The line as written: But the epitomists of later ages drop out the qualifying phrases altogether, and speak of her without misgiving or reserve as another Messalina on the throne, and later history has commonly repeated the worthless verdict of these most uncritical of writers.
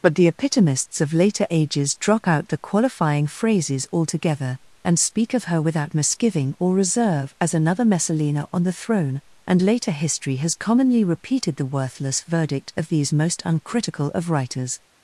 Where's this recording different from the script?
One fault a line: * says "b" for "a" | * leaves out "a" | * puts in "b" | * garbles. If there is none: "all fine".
all fine